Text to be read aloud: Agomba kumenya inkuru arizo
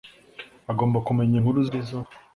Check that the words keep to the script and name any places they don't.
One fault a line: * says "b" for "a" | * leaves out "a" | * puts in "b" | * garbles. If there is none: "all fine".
all fine